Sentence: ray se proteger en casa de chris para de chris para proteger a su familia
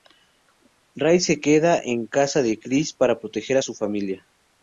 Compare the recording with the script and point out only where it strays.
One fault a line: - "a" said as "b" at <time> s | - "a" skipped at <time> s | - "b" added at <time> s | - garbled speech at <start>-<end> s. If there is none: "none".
- "proteger" said as "queda" at 1.4 s
- "de chris para" skipped at 3.2 s